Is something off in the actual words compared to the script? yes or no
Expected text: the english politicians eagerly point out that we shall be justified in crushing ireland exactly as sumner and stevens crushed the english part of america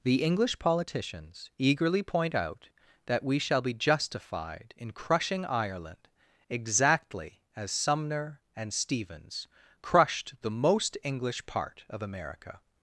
yes